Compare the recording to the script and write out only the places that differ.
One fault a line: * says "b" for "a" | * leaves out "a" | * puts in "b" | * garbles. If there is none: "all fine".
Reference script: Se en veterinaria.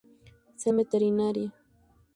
all fine